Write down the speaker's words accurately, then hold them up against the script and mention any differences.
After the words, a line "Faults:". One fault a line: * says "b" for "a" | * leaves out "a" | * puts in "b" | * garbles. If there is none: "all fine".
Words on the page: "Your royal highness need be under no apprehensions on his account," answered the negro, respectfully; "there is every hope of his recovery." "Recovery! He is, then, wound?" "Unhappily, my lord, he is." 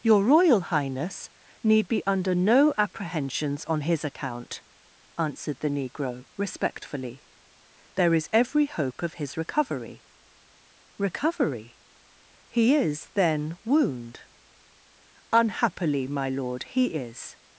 "Your royal highness need be under no apprehensions on his account," answered the negro, respectfully; "there is every hope of his recovery." "Recovery! He is, then, wound?" "Unhappily, my lord, he is."
Faults:
all fine